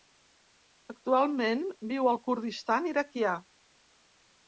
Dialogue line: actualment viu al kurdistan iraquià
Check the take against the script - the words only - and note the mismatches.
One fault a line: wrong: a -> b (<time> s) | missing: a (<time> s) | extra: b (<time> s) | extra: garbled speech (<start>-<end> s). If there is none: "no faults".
no faults